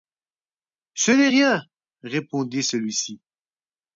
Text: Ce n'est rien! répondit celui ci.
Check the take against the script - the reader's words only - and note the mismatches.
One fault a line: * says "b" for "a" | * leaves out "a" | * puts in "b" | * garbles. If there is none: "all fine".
all fine